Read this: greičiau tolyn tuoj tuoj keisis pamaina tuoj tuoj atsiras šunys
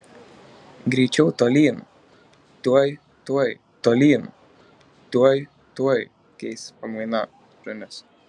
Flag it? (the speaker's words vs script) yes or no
yes